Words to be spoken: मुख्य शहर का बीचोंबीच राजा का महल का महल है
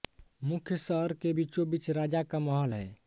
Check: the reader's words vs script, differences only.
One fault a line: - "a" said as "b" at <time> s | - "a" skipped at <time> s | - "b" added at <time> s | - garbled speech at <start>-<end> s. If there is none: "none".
- "का" said as "के" at 1.1 s
- "का महल" skipped at 2.7 s